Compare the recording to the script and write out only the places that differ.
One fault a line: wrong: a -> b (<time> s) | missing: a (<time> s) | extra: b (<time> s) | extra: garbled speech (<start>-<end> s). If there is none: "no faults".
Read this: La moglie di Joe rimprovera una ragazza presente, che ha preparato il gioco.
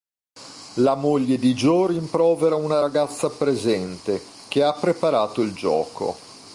no faults